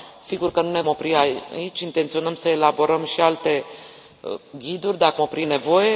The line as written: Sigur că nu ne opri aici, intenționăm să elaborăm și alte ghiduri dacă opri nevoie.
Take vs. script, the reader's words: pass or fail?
pass